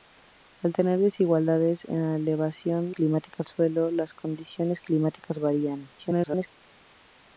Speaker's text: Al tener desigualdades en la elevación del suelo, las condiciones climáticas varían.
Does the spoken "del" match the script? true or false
false